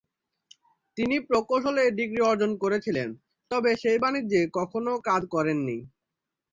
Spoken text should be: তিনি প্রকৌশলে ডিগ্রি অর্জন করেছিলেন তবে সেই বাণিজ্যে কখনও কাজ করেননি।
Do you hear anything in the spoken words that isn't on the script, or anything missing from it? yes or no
no